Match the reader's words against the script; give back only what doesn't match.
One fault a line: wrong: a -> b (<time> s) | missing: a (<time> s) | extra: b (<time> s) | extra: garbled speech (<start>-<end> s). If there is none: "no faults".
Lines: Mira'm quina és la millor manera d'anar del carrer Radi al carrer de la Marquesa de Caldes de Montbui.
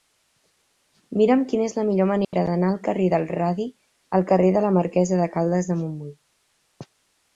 extra: del (3.2 s)